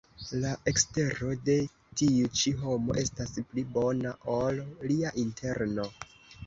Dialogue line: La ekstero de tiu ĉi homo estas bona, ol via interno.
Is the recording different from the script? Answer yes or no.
yes